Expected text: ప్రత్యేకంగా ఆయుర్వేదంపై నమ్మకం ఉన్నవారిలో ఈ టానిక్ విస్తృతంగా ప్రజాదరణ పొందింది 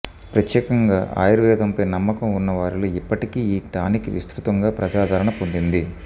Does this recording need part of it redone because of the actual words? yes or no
yes